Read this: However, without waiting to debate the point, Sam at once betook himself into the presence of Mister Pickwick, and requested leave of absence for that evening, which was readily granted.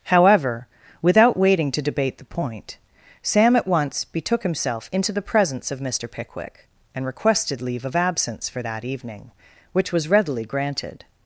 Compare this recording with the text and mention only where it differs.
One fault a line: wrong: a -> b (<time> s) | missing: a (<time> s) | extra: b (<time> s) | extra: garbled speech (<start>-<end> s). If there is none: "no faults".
no faults